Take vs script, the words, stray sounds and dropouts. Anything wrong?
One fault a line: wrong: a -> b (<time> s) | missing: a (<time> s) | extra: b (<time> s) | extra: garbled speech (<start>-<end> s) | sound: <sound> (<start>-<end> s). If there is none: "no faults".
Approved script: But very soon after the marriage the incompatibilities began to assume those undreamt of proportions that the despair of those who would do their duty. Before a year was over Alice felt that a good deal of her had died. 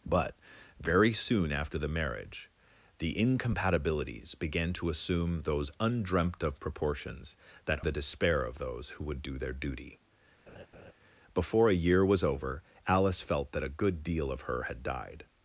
sound: laugh (10.5-10.9 s)